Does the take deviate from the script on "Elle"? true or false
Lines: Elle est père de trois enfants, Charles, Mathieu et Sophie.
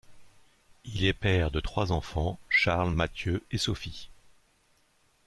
true